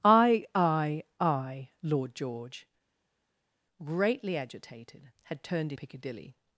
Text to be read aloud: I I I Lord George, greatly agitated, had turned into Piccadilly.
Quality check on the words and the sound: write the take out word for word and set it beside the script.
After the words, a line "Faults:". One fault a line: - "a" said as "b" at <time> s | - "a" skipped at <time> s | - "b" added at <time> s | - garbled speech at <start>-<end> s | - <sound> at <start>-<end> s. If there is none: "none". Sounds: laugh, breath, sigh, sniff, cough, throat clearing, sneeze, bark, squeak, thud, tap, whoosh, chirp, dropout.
I I I Lord George, greatly agitated, had turned Piccadilly.
Faults:
- "into" skipped at 5.7 s